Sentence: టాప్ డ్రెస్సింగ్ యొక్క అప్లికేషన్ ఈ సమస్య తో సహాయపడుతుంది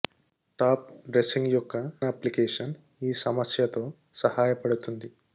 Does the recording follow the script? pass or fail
pass